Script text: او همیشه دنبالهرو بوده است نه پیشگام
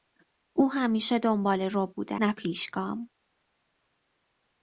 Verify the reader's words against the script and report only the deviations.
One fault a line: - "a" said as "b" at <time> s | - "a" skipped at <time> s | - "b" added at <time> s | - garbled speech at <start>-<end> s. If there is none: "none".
- "است" skipped at 2.1 s